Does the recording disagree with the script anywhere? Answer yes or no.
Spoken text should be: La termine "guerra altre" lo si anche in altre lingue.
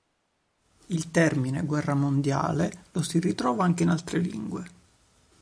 yes